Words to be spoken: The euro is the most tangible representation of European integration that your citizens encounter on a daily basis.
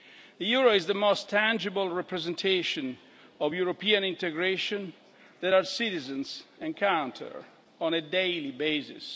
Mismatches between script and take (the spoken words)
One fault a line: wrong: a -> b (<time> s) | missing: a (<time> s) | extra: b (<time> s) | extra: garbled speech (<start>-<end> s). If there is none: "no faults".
wrong: your -> our (5.5 s)